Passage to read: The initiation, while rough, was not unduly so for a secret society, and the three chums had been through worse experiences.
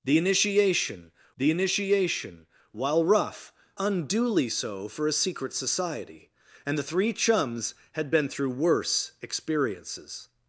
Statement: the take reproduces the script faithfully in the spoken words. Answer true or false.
false